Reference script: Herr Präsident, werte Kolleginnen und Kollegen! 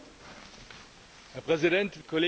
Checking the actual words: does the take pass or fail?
fail